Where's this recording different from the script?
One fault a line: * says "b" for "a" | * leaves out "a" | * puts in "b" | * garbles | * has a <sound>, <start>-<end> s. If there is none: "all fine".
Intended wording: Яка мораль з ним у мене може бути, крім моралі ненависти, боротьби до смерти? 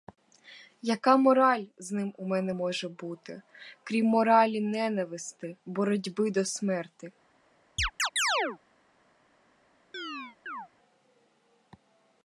* has a chirp, 7.8-8.6 s
* has a chirp, 9.9-10.7 s